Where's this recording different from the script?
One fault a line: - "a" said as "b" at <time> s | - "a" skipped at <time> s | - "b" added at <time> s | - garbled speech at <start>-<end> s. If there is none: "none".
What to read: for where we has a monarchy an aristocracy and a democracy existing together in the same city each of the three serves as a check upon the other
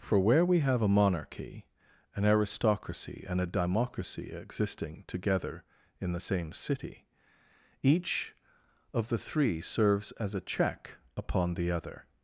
- "has" said as "have" at 0.6 s